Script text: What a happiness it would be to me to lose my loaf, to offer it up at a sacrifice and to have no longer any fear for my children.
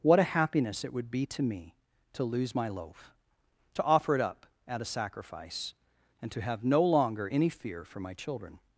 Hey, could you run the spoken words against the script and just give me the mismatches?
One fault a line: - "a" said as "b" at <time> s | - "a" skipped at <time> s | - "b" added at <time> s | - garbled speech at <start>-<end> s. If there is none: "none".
none